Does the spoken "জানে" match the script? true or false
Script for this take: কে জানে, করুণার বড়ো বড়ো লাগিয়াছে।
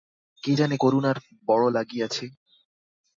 true